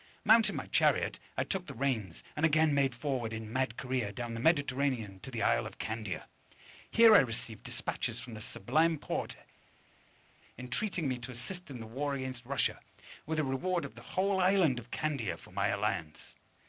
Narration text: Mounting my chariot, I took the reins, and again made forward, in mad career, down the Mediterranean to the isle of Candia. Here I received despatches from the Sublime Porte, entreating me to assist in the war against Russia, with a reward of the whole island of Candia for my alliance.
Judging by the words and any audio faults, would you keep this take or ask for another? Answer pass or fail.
pass